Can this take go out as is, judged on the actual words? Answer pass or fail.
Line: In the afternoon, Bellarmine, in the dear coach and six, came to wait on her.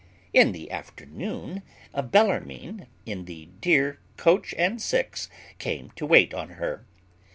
pass